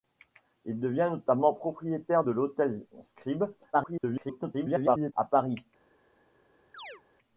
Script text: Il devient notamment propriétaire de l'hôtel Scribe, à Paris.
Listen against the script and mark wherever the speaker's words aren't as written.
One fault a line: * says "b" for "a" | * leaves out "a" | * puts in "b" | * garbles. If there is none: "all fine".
* garbles